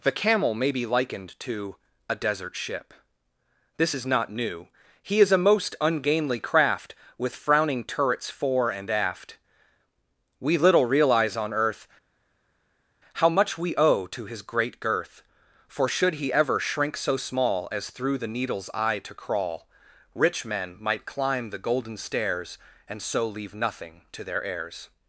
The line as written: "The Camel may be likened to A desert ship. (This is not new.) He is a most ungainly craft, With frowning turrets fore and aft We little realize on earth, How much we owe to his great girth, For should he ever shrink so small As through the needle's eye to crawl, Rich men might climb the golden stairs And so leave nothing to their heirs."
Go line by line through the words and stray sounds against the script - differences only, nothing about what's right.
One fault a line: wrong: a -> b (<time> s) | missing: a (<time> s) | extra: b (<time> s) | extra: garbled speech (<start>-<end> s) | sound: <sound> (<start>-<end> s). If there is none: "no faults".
no faults